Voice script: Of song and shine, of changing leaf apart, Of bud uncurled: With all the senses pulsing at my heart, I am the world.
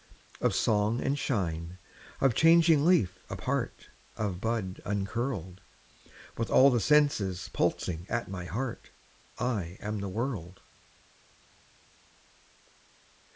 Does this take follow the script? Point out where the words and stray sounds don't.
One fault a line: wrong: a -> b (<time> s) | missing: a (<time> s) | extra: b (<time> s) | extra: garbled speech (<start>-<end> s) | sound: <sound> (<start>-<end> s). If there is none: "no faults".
no faults